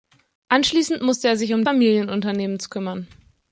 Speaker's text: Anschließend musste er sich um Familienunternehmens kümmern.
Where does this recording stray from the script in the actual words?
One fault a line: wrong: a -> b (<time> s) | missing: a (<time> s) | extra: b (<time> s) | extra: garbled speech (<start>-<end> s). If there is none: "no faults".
no faults